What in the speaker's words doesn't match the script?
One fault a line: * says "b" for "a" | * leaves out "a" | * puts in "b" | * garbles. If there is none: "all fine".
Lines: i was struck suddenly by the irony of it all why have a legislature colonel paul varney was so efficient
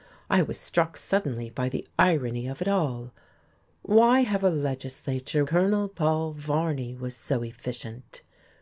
all fine